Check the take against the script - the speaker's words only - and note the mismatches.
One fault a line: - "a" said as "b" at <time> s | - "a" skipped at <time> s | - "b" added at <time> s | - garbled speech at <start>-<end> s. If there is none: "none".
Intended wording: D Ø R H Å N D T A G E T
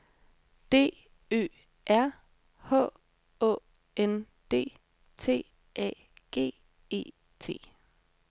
none